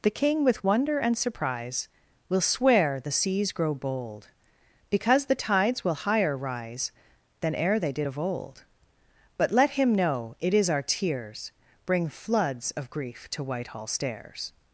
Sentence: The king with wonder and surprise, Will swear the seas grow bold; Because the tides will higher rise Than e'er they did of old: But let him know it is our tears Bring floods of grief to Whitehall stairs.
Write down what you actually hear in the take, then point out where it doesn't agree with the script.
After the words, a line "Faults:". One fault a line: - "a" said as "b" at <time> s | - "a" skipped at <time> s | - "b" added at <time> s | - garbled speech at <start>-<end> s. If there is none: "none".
The king with wonder and surprise, Will swear the seas grow bold; Because the tides will higher rise Than e'er they did of old: But let him know it is our tears Bring floods of grief to Whitehall stairs.
Faults:
none